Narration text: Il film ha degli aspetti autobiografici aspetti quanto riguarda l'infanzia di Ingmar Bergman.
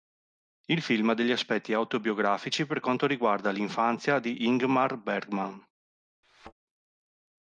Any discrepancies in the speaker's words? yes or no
yes